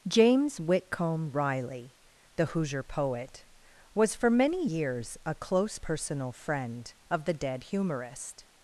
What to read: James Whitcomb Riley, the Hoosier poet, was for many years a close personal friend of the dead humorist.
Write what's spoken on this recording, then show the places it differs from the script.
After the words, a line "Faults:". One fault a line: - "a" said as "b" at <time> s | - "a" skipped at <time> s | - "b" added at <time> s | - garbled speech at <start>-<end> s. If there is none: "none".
James Whitcomb Riley, the Hoosier poet, was for many years a close personal friend of the dead humorist.
Faults:
none